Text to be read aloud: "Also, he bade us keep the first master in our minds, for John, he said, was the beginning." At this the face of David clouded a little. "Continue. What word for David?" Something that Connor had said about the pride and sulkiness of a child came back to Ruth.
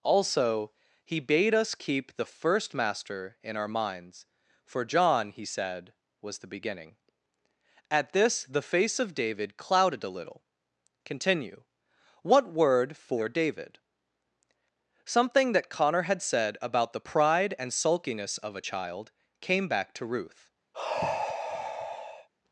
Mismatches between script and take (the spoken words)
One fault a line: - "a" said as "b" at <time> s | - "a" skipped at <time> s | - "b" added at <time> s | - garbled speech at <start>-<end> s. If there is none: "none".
none